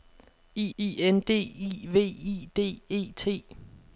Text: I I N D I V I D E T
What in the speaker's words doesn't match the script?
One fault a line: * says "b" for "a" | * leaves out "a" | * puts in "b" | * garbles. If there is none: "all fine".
all fine